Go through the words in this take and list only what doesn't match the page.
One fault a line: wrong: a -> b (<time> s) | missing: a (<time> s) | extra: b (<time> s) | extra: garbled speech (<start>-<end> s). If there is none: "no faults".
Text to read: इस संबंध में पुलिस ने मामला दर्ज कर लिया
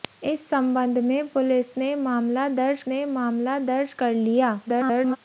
extra: ने मामला दर्ज (2.9 s)
extra: garbled speech (4.7-5.2 s)